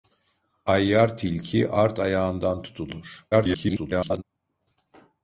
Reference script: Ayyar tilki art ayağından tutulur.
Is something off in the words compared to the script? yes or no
yes